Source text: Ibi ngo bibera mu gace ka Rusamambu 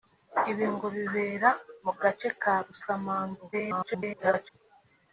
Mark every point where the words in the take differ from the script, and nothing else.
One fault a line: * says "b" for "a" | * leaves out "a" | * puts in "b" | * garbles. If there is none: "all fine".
* garbles